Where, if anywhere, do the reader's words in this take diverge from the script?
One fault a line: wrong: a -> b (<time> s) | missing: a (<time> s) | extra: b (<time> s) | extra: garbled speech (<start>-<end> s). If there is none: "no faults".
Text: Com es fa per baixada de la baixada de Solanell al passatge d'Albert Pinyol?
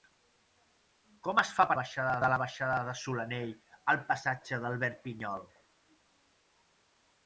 no faults